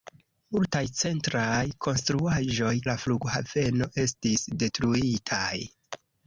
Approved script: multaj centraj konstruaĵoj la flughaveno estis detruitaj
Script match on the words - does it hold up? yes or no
yes